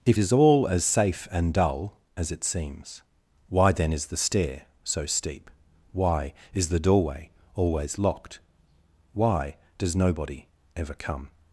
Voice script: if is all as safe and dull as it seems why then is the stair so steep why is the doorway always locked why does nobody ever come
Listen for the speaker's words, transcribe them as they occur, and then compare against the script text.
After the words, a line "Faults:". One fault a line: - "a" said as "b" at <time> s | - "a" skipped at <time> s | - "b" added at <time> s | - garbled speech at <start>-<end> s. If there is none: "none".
if is all as safe and dull as it seems why then is the stair so steep why is the doorway always locked why does nobody ever come
Faults:
none